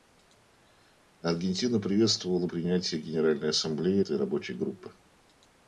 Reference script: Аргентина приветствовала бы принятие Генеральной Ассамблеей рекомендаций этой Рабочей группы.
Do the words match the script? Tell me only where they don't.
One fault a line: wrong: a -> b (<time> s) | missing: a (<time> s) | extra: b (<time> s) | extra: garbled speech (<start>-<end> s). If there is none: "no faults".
missing: бы (2.5 s)
missing: рекомендаций (4.0 s)